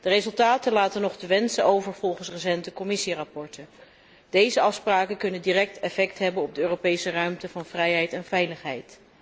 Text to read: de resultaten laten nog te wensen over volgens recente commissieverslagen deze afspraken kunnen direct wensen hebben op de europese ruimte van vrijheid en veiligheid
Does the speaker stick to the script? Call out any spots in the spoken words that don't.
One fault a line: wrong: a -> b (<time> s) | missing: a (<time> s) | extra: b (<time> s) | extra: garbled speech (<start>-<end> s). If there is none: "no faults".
wrong: wensen -> effect (5.8 s)